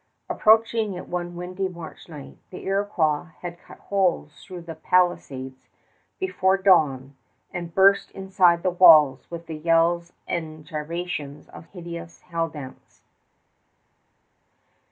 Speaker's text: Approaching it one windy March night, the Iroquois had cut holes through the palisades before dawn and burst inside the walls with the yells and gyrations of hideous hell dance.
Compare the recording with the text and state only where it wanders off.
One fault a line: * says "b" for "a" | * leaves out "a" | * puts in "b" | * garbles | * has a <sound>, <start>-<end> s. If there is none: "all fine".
all fine